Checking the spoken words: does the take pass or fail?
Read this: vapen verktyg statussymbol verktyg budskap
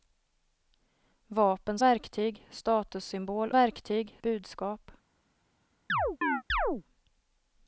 pass